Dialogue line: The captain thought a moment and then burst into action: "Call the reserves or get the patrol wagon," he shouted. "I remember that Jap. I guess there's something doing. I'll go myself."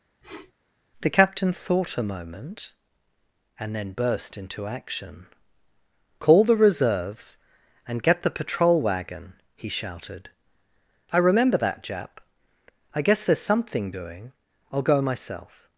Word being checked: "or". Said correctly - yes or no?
no